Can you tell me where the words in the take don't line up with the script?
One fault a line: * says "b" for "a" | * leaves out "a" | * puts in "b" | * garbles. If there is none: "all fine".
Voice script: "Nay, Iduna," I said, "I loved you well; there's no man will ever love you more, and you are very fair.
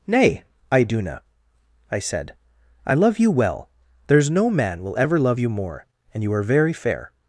* says "love" for "loved"